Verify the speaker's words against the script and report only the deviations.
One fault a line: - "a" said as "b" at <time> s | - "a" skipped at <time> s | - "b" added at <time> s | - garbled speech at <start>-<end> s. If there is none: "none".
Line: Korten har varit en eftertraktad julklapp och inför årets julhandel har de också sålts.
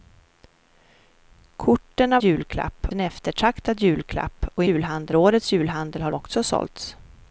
- "varit" said as "julklapp" at 2.2 s
- "inför" said as "julhandel" at 4.7 s
- "de" skipped at 6.1 s